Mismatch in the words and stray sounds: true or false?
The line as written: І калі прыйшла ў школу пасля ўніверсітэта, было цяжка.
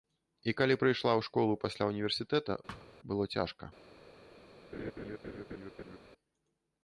true